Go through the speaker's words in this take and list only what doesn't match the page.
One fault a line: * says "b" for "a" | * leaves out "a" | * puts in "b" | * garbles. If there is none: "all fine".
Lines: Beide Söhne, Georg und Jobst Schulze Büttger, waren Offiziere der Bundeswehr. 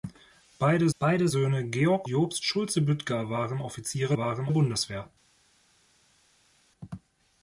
* puts in "beide"
* leaves out "und"
* says "waren" for "der"